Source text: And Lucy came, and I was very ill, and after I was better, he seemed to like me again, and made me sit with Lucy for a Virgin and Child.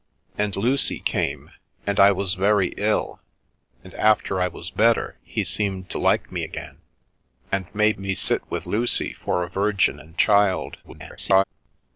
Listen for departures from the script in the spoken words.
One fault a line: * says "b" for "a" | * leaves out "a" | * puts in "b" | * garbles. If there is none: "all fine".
* garbles